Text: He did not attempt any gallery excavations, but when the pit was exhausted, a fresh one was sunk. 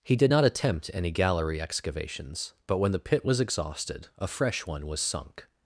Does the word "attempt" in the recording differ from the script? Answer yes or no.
no